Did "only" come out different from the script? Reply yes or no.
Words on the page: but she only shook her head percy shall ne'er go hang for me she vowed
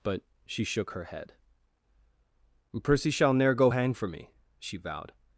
yes